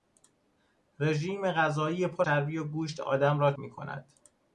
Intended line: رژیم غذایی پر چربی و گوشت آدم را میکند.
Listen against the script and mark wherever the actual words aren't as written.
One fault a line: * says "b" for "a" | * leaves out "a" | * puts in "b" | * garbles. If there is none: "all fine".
all fine